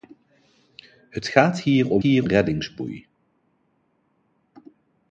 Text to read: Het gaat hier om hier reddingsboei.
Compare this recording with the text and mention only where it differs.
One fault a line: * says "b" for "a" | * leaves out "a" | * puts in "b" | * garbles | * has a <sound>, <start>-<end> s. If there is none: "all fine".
all fine